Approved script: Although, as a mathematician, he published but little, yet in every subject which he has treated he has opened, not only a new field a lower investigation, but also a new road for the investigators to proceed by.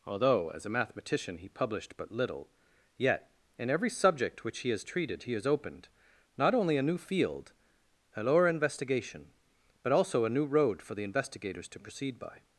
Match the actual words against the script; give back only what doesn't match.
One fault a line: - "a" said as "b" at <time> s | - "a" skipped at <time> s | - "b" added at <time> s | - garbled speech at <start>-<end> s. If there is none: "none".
none